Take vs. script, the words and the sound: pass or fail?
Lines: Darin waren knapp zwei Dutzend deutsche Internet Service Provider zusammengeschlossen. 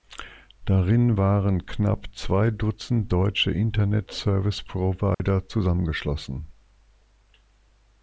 fail